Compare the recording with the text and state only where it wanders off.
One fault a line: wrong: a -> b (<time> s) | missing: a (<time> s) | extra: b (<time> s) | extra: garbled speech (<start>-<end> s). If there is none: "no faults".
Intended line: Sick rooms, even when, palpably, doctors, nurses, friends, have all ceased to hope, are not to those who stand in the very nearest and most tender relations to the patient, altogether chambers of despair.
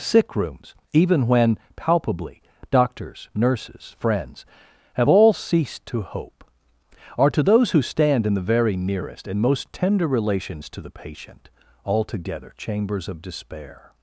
missing: not (7.3 s)